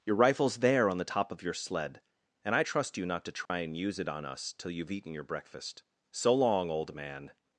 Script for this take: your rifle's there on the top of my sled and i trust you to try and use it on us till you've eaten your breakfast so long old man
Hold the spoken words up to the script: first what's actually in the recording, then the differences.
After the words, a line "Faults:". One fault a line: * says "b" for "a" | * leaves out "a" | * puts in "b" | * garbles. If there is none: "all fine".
your rifle's there on the top of your sled and i trust you not to try and use it on us till you've eaten your breakfast so long old man
Faults:
* says "your" for "my"
* puts in "not"